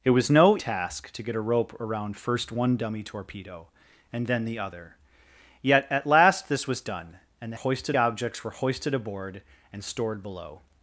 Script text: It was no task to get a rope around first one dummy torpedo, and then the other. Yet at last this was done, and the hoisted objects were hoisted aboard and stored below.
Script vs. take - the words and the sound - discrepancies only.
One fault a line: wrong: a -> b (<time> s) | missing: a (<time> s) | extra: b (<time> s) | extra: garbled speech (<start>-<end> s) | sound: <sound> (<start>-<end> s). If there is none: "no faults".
no faults